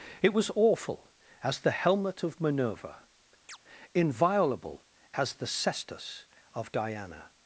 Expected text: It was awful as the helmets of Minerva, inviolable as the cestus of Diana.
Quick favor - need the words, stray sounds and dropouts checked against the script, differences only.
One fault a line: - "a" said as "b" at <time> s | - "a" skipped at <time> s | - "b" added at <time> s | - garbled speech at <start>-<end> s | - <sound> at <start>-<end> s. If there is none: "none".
- "helmets" said as "helmet" at 1.7 s
- chirp at 3.5-3.6 s